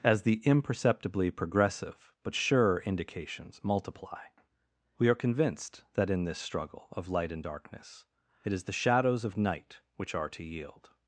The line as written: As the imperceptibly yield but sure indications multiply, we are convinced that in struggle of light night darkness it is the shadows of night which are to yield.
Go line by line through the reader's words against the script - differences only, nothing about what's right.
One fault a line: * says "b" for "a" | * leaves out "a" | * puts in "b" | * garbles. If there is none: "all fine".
* says "progressive" for "yield"
* puts in "this"
* says "and" for "night"